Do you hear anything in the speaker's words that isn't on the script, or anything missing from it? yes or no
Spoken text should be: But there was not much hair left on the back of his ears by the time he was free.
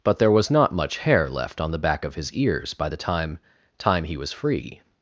yes